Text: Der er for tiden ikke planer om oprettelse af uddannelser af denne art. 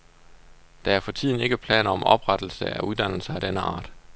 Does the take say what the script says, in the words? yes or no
yes